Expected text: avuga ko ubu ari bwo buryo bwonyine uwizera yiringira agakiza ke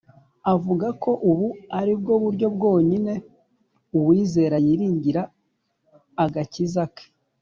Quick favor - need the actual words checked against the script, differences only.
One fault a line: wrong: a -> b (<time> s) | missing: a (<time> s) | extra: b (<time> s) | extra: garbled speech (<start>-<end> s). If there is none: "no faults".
no faults